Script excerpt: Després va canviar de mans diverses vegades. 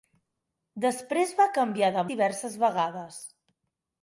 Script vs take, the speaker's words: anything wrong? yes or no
yes